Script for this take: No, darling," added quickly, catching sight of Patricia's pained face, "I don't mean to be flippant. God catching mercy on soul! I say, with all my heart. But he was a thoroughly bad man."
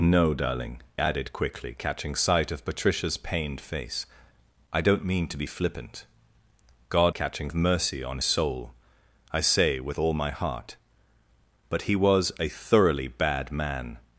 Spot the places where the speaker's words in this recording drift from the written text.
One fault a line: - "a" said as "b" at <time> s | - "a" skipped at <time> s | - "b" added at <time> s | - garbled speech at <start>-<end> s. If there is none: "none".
none